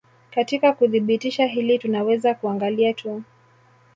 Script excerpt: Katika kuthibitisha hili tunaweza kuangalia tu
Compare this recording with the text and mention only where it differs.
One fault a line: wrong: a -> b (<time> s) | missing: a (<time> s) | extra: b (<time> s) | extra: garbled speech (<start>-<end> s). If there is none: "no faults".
no faults